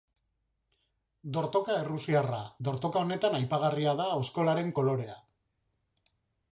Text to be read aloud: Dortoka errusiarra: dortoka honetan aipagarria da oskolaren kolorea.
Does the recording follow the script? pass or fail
pass